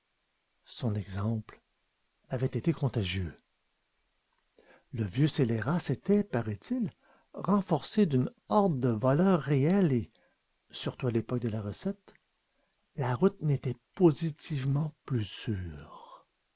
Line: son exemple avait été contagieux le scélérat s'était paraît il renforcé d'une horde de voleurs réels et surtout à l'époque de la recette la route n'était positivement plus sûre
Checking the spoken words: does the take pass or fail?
fail